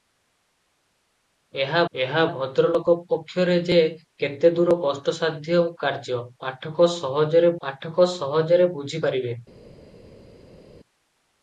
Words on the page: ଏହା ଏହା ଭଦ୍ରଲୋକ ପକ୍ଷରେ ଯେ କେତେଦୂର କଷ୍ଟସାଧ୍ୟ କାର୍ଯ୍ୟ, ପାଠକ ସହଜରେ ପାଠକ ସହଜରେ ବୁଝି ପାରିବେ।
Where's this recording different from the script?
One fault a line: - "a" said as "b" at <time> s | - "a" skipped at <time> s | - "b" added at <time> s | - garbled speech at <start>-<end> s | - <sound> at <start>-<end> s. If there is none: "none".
none